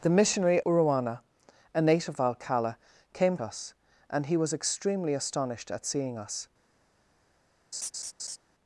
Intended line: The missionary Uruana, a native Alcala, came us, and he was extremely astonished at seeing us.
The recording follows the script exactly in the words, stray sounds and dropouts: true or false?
false